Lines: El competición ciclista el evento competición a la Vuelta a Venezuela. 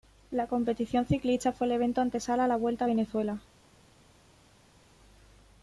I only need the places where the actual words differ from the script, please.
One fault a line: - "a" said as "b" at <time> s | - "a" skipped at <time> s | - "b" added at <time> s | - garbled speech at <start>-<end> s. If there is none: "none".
- "El" said as "La" at 0.3 s
- "fue" added at 1.5 s
- "competición" said as "antesala" at 2.0 s